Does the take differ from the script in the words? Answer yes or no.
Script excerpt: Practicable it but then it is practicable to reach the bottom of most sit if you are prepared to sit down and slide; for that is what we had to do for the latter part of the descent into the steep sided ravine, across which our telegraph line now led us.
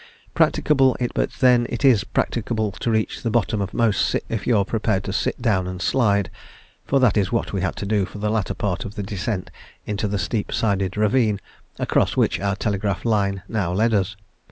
no